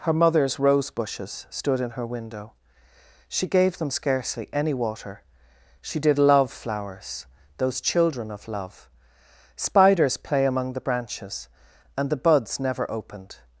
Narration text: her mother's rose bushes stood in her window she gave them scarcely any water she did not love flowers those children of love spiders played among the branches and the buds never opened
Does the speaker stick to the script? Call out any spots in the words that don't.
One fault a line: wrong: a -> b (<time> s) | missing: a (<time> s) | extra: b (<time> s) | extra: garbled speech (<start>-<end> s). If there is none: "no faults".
missing: not (6.2 s)
wrong: played -> play (10.2 s)